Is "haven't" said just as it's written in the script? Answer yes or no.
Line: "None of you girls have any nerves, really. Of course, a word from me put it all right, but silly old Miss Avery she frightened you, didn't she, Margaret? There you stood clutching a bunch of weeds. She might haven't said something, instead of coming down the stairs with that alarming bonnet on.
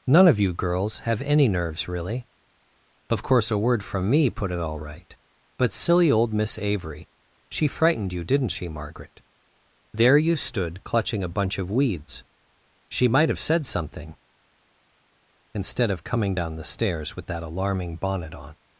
no